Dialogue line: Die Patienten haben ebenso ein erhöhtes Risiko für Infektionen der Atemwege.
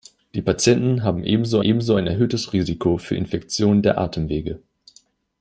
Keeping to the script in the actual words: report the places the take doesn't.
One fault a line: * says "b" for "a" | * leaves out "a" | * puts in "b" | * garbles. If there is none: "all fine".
* puts in "ebenso"